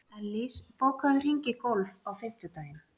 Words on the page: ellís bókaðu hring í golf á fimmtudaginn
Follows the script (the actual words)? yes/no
yes